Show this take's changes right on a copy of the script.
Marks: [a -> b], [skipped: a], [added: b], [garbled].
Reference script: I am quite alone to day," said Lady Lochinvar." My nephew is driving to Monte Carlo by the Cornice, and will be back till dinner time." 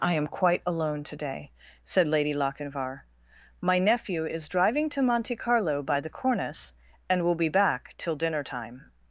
I am quite alone to day," said Lady Lochinvar." My nephew is driving to Monte Carlo by the Cornice, and will be back till dinner time."